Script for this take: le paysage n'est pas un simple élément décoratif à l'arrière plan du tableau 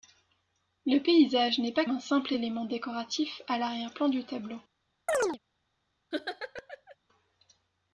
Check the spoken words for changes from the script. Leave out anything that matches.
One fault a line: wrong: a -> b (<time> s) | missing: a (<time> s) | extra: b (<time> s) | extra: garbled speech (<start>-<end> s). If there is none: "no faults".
no faults